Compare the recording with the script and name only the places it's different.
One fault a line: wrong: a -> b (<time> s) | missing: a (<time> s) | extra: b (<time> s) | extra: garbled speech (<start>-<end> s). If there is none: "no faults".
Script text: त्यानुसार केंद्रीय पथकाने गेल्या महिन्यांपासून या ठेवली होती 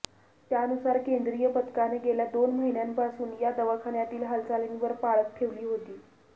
extra: दोन (2.3 s)
extra: दवाखान्यातील हालचालींवर पाळत (3.6 s)